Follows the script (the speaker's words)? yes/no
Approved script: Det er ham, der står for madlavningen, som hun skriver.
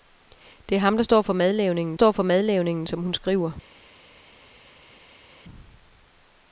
no